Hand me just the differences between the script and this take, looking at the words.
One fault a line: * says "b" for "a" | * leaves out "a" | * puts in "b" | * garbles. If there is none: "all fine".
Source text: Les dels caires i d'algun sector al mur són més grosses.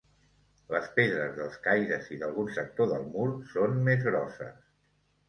* puts in "pedres"
* says "del" for "al"